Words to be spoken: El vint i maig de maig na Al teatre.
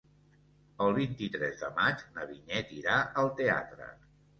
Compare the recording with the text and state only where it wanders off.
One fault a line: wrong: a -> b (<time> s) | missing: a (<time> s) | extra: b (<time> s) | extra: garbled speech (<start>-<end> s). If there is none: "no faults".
wrong: maig -> tres (1.3 s)
extra: Vinyet irà (2.3 s)